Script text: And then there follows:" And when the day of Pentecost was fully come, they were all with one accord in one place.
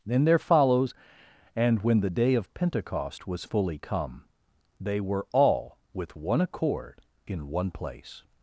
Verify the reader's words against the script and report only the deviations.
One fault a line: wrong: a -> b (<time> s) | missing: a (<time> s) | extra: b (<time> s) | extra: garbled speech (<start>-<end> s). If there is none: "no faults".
missing: And (0.1 s)